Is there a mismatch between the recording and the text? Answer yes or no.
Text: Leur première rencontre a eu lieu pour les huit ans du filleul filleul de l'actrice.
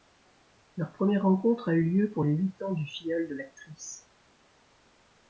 yes